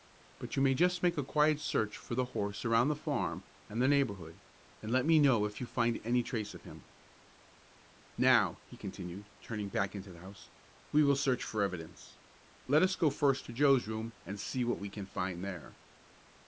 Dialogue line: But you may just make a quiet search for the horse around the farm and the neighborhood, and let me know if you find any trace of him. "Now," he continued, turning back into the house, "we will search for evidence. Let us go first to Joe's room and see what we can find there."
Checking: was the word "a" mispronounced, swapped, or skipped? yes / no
no